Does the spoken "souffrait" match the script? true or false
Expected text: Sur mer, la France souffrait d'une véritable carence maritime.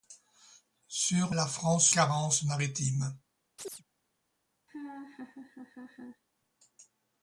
false